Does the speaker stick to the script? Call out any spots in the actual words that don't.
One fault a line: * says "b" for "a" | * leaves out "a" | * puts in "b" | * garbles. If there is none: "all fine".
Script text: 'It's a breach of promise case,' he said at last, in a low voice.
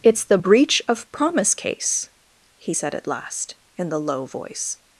* says "the" for "a"
* says "the" for "a"